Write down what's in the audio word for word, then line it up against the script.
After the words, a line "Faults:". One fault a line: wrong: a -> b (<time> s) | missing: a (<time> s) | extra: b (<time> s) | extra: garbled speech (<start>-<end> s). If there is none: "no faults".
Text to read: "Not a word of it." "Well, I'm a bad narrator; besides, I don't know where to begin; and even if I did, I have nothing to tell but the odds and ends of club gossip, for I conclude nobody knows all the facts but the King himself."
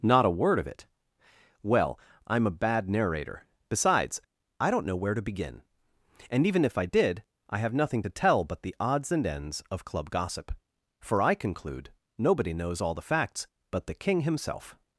"Not a word of it." "Well, I'm a bad narrator; besides, I don't know where to begin; and even if I did, I have nothing to tell but the odds and ends of club gossip, for I conclude nobody knows all the facts but the King himself."
Faults:
no faults